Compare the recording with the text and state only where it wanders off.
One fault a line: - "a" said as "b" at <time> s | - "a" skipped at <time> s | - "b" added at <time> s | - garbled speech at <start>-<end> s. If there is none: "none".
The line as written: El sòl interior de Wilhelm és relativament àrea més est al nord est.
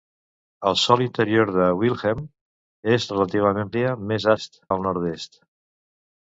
none